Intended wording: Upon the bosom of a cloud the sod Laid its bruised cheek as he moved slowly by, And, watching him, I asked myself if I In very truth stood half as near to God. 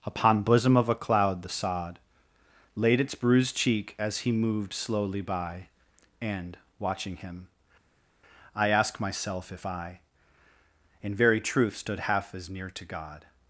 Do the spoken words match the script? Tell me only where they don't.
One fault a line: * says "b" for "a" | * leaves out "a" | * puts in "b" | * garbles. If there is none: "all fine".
* leaves out "the"
* says "ask" for "asked"